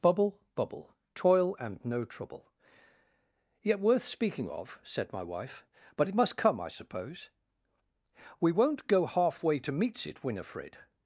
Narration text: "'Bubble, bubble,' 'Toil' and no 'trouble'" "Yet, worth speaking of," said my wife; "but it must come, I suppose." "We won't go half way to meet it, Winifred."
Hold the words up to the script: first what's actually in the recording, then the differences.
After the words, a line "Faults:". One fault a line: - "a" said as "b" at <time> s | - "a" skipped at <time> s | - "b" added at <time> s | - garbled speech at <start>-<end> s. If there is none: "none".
"'Bubble, bubble,' 'Toil' and no 'trouble'" "Yet, worth speaking of," said my wife; "but it must come, I suppose." "We won't go half way to meets it, Winifred."
Faults:
- "meet" said as "meets" at 9.7 s